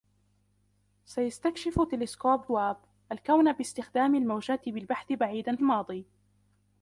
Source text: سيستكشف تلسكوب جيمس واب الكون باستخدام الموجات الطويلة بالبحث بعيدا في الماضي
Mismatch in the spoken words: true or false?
true